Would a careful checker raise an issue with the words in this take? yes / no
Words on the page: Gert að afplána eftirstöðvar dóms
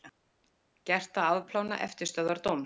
no